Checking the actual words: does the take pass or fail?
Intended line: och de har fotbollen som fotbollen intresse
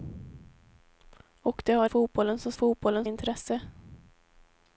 pass